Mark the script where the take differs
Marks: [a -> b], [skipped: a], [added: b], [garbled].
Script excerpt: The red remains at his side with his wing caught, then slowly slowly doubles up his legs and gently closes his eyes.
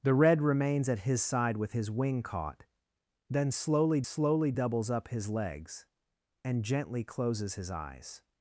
The red remains at his side with his wing caught, then slowly slowly doubles up his legs and gently closes his eyes.